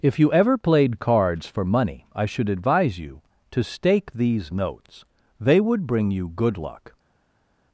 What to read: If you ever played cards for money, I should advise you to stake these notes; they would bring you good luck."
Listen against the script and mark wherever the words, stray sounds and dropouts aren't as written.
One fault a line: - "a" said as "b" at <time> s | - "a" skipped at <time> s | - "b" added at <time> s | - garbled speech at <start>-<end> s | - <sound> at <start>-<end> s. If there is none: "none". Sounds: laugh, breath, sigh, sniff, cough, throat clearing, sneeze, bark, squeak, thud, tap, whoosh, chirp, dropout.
none